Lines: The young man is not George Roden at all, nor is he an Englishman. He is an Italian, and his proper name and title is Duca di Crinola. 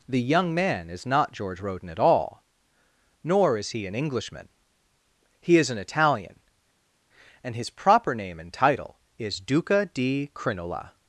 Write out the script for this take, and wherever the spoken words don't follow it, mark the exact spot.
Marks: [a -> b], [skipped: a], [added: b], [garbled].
The young man is not George Roden at all, nor is he an Englishman. He is an Italian, and his proper name and title is Duca di Crinola.